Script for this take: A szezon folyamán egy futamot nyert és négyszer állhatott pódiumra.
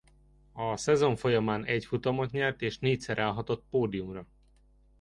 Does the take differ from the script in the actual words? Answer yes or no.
no